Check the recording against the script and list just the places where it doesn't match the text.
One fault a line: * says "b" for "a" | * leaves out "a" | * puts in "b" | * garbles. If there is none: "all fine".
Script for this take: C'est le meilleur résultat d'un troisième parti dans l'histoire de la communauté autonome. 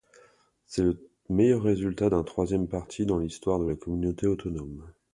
all fine